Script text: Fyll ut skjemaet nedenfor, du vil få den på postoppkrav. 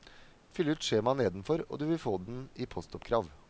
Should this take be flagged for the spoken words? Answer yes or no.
yes